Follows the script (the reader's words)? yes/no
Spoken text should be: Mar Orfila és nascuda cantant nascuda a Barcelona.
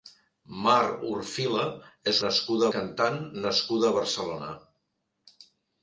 yes